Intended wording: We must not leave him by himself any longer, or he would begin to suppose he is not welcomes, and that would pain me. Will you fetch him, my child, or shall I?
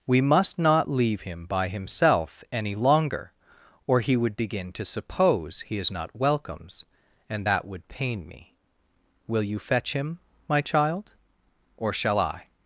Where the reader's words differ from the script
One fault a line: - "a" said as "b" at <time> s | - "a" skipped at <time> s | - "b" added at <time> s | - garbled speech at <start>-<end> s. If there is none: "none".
none